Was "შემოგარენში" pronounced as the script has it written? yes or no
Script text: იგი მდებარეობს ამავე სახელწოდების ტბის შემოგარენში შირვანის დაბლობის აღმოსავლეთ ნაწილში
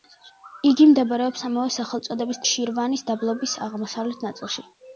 no